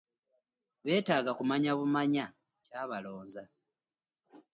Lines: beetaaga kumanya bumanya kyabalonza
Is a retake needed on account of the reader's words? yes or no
no